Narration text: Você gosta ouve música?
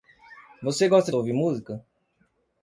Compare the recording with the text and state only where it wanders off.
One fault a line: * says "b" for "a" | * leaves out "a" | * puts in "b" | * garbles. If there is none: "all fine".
all fine